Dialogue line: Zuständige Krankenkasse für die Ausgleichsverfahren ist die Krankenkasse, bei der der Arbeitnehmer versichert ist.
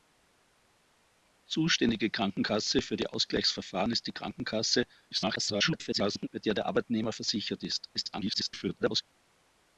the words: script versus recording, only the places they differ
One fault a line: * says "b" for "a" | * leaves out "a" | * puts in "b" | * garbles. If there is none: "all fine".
* garbles
* garbles